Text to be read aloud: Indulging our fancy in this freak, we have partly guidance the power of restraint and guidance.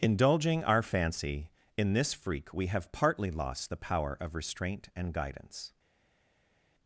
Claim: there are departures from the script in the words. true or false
true